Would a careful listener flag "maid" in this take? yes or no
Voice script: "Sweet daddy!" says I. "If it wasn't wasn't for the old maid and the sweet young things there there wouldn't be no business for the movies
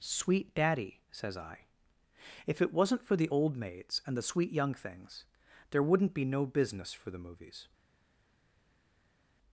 yes